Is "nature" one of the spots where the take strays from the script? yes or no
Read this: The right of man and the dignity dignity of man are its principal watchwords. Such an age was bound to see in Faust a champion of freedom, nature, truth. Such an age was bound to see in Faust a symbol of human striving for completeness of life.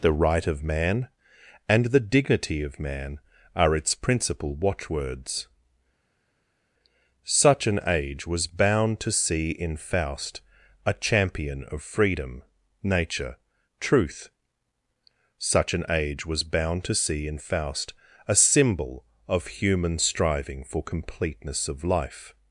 no